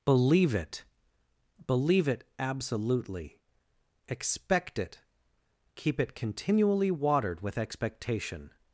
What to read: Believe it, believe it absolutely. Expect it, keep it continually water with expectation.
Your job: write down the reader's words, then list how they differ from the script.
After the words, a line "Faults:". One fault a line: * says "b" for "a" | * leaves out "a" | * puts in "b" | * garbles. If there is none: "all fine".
Believe it, believe it absolutely. Expect it, keep it continually watered with expectation.
Faults:
* says "watered" for "water"